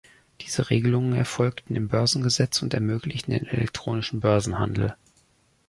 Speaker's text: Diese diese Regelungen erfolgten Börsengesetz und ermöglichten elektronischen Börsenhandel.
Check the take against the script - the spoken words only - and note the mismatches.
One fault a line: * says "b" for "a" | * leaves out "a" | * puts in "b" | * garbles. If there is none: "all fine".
* leaves out "diese"
* puts in "im"
* puts in "den"